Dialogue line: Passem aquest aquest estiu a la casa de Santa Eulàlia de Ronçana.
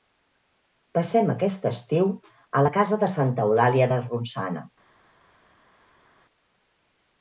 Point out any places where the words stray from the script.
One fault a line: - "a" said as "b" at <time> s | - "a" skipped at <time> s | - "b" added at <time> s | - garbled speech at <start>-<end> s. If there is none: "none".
- "aquest" skipped at 1.7 s